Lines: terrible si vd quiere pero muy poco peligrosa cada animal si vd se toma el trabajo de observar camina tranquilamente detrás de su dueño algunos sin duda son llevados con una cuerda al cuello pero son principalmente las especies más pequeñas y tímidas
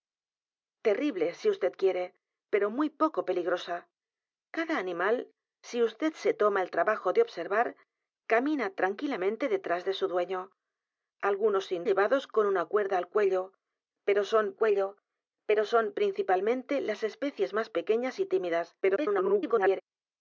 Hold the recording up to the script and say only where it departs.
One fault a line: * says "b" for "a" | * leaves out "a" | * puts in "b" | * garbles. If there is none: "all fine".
* leaves out "duda son"
* puts in "cuello pero son"
* garbles